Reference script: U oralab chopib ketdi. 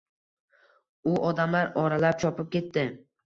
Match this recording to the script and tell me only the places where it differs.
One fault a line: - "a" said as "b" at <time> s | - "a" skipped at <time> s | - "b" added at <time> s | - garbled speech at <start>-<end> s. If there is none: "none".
- "odamlar" added at 1.3 s